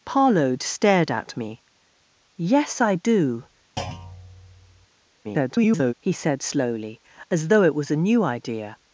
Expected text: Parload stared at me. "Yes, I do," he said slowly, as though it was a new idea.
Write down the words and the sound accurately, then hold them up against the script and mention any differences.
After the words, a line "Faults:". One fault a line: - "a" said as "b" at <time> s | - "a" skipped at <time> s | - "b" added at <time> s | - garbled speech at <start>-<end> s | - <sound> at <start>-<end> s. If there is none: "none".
Parload stared at me. "Yes, I do," [garbled] he said slowly, as though it was a new idea.
Faults:
- thud at 3.8-4.9 s
- garbled speech at 5.2-5.9 s